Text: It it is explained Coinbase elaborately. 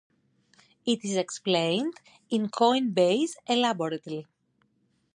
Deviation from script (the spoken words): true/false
true